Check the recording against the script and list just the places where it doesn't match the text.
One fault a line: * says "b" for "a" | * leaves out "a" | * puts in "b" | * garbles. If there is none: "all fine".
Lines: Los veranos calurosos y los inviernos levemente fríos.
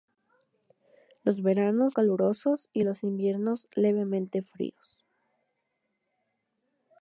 all fine